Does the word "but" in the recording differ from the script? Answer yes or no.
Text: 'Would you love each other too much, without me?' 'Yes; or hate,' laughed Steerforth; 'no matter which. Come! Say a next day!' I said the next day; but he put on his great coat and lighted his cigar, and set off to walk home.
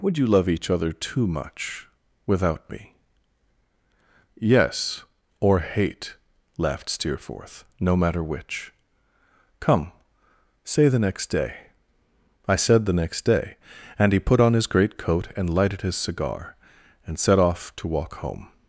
yes